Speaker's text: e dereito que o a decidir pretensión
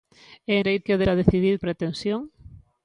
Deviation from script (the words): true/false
false